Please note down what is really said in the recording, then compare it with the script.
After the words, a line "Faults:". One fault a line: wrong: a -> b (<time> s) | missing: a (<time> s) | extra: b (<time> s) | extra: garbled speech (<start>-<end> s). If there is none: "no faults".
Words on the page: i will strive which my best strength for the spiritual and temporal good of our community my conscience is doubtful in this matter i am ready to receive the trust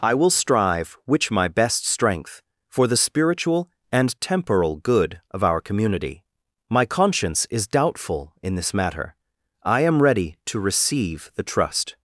i will strive which my best strength for the spiritual and temporal good of our community my conscience is doubtful in this matter i am ready to receive the trust
Faults:
no faults